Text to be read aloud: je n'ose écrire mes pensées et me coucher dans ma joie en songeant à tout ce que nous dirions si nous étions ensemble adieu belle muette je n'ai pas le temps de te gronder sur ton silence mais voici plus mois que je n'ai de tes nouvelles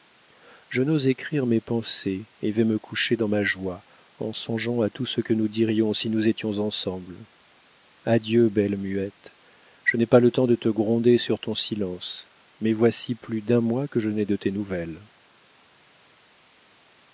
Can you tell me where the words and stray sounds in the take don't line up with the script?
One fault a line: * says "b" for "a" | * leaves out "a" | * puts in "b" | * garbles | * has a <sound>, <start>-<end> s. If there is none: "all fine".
* puts in "vais"
* puts in "d'un"